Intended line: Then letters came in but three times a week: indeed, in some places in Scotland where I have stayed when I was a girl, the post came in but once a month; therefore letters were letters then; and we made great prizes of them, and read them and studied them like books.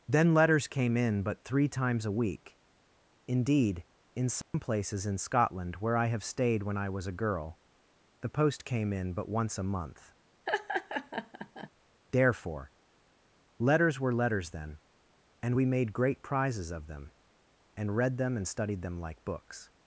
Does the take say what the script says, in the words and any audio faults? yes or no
no